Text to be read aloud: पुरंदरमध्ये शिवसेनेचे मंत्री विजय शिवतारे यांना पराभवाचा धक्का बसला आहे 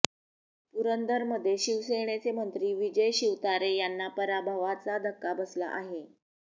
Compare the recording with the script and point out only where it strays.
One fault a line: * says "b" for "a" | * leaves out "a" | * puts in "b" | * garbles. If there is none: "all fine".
all fine